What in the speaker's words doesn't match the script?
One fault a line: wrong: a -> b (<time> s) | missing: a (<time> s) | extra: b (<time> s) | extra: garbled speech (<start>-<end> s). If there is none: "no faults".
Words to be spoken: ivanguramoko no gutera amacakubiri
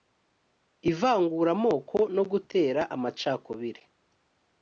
no faults